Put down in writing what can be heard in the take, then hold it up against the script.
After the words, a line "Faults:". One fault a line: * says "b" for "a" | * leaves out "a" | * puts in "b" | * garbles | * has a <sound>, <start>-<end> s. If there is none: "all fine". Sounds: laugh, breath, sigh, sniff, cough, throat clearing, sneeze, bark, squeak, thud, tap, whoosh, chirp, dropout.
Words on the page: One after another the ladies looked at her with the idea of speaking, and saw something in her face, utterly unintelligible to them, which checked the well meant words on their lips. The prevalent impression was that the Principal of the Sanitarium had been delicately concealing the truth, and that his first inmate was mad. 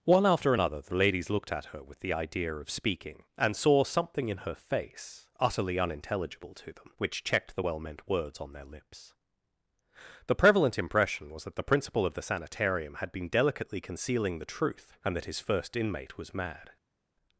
One after another the ladies looked at her with the idea of speaking, and saw something in her face, utterly unintelligible to them, which checked the well meant words on their lips. The prevalent impression was that the Principal of the Sanitarium had been delicately concealing the truth, and that his first inmate was mad.
Faults:
all fine